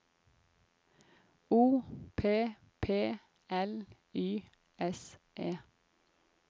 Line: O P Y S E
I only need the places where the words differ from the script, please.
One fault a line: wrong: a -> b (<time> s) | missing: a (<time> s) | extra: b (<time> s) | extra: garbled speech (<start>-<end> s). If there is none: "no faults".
extra: P L (2.8 s)